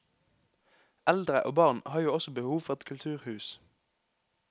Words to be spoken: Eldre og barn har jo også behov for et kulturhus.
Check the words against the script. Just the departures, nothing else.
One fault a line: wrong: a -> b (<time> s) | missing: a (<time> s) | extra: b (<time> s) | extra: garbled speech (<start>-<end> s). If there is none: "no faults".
no faults